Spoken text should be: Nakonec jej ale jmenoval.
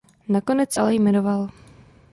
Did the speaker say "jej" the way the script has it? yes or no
no